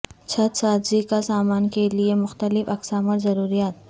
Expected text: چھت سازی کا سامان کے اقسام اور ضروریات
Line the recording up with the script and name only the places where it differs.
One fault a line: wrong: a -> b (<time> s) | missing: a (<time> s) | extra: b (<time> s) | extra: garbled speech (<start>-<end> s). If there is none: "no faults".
extra: لئے مختلف (1.9 s)